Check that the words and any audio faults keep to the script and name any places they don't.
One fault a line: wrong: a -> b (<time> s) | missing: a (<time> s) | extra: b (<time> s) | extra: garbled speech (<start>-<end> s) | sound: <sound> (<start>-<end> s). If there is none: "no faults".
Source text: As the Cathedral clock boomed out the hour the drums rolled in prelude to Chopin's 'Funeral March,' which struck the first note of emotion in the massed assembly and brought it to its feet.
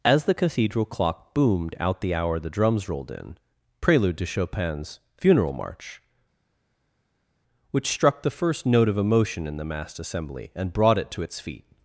no faults